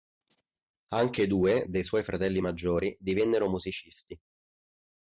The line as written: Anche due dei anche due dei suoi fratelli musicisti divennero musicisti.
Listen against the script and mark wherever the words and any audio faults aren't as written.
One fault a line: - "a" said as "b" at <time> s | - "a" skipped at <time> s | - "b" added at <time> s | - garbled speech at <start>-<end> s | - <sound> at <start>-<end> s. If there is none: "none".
- "anche due dei" skipped at 1.8 s
- "musicisti" said as "maggiori" at 2.4 s